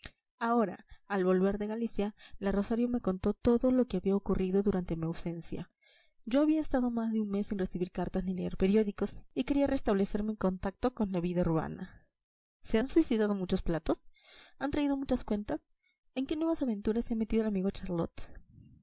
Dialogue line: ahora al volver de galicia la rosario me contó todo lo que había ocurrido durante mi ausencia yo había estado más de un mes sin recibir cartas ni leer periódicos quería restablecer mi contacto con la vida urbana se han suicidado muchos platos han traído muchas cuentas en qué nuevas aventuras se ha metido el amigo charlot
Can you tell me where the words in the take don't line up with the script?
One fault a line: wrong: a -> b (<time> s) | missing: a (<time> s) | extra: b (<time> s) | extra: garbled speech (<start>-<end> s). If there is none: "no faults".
extra: y (9.3 s)